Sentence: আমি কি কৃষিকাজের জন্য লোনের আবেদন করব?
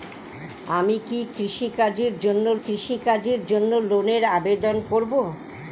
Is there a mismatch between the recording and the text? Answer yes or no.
yes